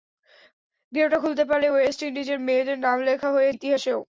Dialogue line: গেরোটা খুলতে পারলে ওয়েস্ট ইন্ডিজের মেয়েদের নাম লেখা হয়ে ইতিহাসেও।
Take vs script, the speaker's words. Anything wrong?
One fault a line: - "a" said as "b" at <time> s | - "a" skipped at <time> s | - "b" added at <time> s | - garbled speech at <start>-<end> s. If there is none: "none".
none